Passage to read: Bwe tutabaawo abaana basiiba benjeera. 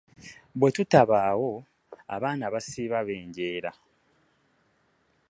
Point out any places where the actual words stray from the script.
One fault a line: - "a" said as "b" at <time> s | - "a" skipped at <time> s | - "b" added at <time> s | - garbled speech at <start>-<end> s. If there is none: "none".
none